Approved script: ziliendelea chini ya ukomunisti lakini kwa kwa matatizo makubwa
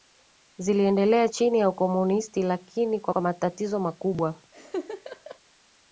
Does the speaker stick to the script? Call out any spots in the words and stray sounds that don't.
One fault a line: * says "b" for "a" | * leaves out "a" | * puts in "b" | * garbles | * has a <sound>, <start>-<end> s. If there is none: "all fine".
* has a laugh, 4.5-5.4 s